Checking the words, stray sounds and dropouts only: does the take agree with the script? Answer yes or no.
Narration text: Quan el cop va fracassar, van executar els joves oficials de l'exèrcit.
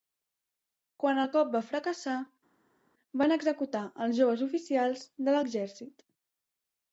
yes